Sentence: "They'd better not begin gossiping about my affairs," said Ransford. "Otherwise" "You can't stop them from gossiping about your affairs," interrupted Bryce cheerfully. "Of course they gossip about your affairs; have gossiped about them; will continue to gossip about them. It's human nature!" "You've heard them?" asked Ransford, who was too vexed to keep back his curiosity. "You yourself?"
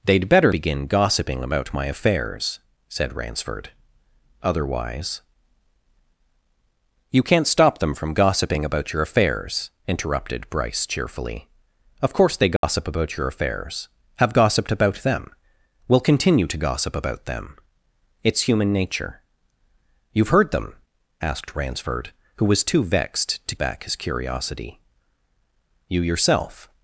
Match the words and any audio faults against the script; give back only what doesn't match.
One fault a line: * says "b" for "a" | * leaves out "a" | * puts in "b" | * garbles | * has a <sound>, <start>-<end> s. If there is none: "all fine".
* leaves out "not"
* has a dropout, 12.6-12.6 s
* leaves out "keep"